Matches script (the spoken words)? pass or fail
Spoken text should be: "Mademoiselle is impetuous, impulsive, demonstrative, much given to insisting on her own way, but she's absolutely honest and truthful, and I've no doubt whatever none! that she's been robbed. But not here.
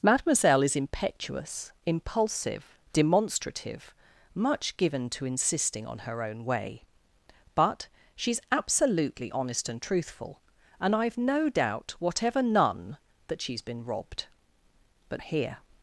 fail